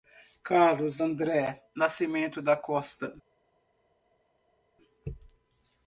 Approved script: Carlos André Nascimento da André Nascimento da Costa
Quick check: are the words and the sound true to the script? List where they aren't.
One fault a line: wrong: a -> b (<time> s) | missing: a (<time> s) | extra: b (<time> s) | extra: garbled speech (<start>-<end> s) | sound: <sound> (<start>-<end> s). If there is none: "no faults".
missing: André Nascimento da (2.5 s)